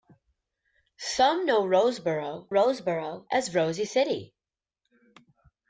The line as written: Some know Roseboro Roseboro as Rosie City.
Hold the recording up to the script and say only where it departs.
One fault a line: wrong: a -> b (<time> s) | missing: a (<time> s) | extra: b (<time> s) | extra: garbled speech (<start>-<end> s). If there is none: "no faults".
no faults